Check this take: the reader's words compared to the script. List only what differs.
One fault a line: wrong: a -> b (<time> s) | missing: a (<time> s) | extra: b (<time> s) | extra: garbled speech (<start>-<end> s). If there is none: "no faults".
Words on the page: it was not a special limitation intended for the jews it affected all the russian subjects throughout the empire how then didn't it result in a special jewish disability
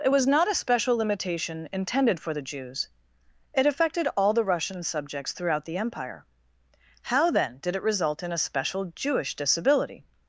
wrong: didn't -> did (7.6 s)